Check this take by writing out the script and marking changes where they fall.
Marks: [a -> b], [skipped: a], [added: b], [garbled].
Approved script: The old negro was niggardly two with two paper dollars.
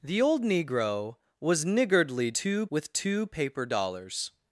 The old negro was niggardly two with two paper dollars.